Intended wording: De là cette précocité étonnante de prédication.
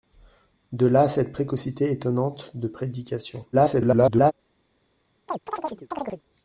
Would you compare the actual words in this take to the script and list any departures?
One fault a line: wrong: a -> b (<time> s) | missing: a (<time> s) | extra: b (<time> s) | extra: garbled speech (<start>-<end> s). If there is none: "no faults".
extra: garbled speech (3.5-4.3 s)